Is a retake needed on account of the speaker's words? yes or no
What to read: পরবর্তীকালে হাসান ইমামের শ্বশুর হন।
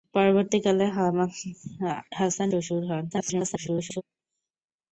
yes